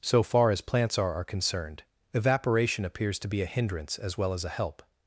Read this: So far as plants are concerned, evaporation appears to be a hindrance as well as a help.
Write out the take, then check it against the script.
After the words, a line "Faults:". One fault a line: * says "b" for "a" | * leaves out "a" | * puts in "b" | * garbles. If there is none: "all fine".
So far as plants are are concerned, evaporation appears to be a hindrance as well as a help.
Faults:
* puts in "are"